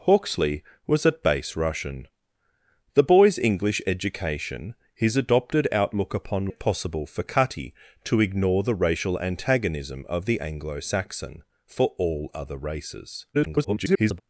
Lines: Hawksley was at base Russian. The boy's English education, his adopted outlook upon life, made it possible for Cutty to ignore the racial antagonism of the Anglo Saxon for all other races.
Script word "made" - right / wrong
wrong